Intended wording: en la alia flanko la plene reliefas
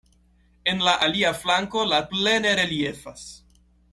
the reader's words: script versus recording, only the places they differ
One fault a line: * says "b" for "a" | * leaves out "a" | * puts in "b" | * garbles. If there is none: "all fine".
all fine